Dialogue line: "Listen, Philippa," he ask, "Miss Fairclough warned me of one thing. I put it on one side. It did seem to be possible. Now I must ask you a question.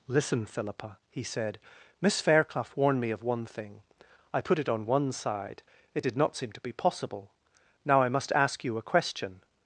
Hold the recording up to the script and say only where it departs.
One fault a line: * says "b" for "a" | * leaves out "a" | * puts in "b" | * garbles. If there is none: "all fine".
* says "said" for "ask"
* puts in "not"